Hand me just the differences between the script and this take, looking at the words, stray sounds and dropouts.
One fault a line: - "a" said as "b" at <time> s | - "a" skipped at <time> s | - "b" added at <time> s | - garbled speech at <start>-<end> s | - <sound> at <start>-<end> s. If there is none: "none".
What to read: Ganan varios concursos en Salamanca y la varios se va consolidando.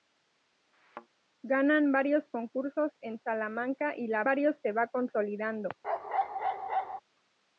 - thud at 0.7-1.1 s
- bark at 5.8-7.0 s